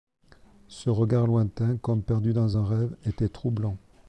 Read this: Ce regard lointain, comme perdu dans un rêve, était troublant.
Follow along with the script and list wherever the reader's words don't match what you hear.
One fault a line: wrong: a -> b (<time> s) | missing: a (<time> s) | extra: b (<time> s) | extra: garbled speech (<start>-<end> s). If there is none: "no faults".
no faults